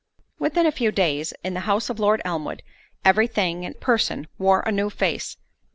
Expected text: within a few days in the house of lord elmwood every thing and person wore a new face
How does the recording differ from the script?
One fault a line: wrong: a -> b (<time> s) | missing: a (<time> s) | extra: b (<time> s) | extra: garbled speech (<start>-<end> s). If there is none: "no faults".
no faults